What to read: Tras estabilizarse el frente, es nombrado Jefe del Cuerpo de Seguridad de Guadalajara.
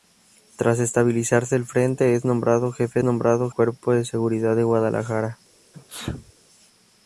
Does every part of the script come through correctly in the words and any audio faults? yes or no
no